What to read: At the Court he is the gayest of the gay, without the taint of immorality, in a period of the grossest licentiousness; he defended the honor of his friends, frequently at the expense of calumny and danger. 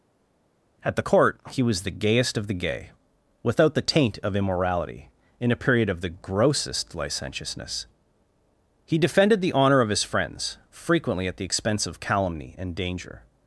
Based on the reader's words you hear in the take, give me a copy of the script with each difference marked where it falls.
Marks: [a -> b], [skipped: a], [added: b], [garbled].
At the Court he [is -> was] the gayest of the gay, without the taint of immorality, in a period of the grossest licentiousness; he defended the honor of his friends, frequently at the expense of calumny and danger.